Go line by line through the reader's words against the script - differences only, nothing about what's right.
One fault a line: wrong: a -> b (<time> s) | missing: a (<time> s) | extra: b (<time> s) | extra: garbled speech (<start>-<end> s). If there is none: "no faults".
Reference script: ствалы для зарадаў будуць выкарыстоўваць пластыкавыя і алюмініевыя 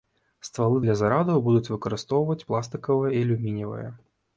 no faults